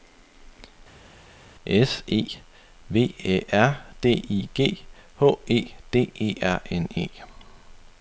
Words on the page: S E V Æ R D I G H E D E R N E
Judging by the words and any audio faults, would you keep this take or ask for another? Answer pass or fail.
pass